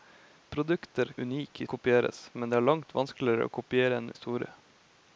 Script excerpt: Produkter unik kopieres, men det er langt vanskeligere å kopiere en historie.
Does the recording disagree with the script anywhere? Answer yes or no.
no